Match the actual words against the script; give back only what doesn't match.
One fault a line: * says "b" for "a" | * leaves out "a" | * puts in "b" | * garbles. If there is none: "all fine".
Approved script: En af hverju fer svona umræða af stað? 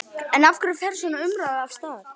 all fine